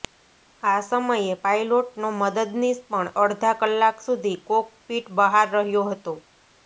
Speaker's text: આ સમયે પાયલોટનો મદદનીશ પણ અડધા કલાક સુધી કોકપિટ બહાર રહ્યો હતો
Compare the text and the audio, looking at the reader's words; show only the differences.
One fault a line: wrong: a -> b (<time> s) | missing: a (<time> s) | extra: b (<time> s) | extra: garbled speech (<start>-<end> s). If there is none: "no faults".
no faults